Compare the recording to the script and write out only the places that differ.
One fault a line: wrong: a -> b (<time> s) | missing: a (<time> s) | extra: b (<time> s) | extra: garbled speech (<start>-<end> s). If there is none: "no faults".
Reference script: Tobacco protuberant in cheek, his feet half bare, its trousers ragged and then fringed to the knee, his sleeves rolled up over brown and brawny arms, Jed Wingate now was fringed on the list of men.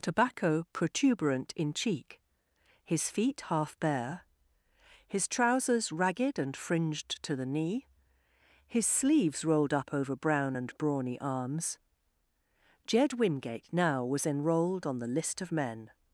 wrong: its -> his (5.1 s)
missing: then (6.5 s)
wrong: fringed -> enrolled (14.3 s)